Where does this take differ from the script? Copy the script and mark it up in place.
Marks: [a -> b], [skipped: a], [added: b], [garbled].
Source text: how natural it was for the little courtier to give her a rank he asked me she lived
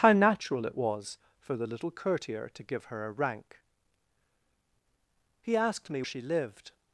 how natural it was for the little courtier to give her a rank he asked me she lived